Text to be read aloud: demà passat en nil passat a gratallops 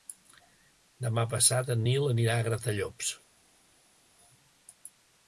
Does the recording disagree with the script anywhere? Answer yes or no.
yes